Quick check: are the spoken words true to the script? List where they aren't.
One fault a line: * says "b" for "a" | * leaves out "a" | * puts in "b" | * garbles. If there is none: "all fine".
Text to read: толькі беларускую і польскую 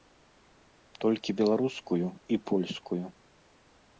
all fine